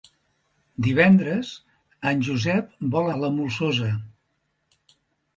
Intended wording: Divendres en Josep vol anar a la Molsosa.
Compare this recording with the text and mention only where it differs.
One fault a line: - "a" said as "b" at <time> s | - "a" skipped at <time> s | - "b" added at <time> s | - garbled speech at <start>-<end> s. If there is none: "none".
- "anar" skipped at 3.1 s